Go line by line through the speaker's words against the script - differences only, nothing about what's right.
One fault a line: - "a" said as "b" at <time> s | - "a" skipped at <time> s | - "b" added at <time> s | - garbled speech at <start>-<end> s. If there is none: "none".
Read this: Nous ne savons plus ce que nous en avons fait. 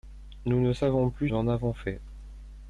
- "ce que nous" skipped at 1.3 s